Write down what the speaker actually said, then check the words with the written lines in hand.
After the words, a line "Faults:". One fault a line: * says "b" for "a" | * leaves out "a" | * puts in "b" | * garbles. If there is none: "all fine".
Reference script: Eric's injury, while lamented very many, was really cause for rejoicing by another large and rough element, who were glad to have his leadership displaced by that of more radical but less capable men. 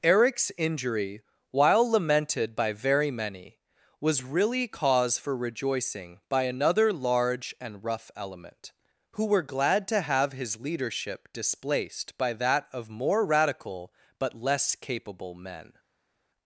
Eric's injury, while lamented by very many, was really cause for rejoicing by another large and rough element, who were glad to have his leadership displaced by that of more radical but less capable men.
Faults:
* puts in "by"